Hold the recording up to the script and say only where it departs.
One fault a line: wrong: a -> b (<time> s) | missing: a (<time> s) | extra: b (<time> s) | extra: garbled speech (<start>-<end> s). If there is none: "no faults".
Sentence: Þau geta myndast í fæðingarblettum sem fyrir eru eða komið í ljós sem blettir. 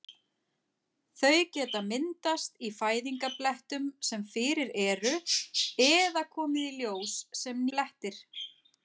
no faults